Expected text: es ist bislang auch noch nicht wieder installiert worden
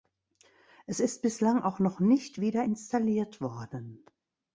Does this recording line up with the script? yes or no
yes